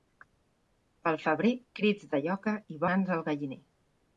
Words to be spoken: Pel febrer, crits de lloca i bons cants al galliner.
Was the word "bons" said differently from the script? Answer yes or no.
yes